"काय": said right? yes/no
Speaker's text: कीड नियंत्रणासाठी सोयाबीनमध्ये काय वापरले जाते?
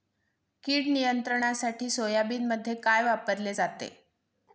yes